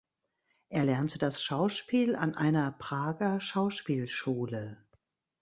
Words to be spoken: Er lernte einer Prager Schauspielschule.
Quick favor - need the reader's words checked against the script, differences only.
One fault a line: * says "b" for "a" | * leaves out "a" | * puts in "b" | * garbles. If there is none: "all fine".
* puts in "das Schauspiel an"